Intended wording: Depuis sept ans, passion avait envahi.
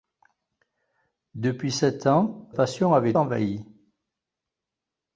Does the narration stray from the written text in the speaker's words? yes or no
no